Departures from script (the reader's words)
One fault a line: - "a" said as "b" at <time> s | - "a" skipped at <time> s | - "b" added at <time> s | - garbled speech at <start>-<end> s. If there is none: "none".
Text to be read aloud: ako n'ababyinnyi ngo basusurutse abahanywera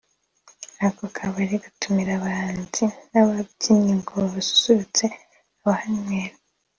- "kabari gatumira abahanzi" added at 1.1 s